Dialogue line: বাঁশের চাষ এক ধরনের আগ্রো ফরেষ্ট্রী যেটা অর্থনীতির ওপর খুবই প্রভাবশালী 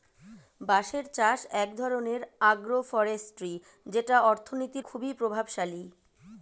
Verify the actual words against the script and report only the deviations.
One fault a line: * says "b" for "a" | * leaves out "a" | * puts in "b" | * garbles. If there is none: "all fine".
* leaves out "ওপর"